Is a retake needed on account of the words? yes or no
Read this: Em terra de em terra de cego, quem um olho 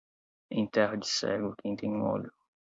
yes